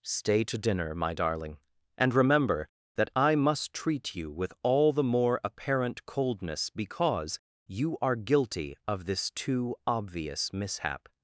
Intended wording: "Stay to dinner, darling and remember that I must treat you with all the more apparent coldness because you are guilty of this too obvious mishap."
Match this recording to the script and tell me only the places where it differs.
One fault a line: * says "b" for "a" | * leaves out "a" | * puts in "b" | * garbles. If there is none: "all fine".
* puts in "my"